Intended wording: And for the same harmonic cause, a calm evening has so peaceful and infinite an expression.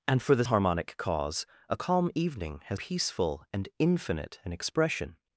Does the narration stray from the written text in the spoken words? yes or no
yes